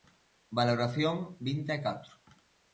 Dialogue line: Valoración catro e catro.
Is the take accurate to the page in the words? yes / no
no